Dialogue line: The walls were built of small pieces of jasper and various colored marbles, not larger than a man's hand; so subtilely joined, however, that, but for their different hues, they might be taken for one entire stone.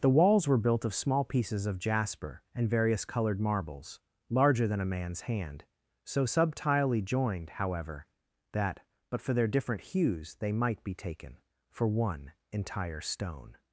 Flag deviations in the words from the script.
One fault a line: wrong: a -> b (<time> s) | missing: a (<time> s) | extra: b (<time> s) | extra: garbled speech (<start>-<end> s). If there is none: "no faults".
missing: not (4.0 s)